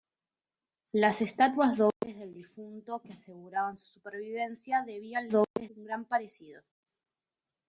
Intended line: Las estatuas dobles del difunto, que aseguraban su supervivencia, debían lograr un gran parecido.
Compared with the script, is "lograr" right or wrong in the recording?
wrong